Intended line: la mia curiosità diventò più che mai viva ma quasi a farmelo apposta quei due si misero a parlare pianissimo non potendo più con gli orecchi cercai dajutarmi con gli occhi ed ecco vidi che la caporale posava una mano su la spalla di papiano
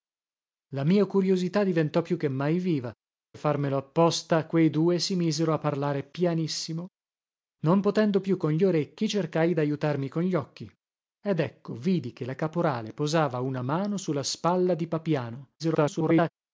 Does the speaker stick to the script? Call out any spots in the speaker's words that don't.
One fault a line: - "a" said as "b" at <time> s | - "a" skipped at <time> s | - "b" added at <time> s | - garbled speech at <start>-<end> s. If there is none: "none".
- "ma quasi" skipped at 2.9 s
- garbled speech at 15.6-16.3 s